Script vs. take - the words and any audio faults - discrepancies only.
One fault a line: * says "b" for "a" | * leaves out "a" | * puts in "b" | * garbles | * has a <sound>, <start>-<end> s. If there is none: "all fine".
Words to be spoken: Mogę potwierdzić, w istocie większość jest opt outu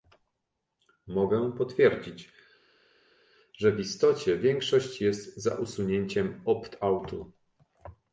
* puts in "że"
* puts in "za usunięciem"